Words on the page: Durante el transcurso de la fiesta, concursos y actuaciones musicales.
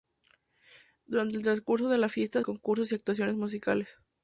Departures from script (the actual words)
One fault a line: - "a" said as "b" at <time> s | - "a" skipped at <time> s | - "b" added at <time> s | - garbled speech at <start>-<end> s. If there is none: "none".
none